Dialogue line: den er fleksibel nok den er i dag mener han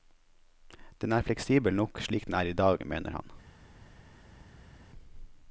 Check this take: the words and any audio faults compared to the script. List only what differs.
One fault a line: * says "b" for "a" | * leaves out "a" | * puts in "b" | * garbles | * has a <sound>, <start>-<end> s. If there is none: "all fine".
* puts in "slik"